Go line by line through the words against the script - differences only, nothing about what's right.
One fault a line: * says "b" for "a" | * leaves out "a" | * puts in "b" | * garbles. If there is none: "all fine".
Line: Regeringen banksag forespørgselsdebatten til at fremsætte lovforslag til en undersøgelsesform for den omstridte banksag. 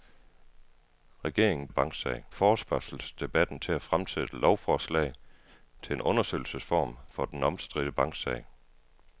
all fine